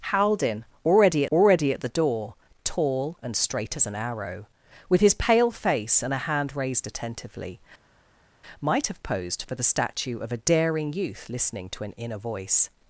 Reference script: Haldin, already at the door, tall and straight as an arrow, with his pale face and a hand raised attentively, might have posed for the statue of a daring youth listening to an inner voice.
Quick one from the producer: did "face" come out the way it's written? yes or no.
yes